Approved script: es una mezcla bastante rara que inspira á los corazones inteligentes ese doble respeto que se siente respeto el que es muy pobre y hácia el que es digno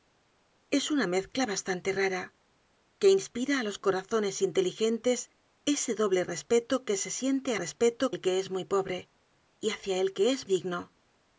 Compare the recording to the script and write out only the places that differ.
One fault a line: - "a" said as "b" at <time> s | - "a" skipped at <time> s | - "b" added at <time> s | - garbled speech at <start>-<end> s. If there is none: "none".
none